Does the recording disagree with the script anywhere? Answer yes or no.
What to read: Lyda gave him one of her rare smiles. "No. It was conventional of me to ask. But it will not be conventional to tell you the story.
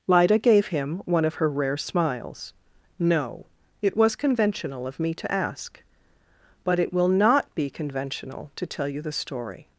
no